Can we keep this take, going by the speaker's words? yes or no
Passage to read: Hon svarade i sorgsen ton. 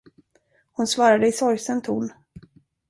yes